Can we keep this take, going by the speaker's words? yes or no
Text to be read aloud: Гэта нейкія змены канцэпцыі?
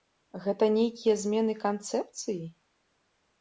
yes